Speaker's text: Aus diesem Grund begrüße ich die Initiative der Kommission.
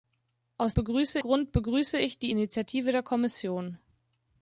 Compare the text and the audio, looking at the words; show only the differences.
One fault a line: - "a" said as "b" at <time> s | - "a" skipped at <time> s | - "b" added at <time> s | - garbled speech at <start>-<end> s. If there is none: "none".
- "diesem" said as "begrüße" at 0.7 s